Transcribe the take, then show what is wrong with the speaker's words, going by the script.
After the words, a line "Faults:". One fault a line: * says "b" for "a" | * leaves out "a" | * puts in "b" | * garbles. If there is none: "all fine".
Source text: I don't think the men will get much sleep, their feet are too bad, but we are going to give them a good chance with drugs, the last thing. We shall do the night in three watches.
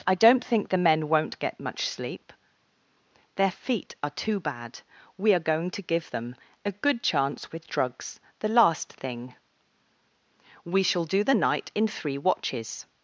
I don't think the men won't get much sleep, their feet are too bad, we are going to give them a good chance with drugs, the last thing. We shall do the night in three watches.
Faults:
* says "won't" for "will"
* leaves out "but"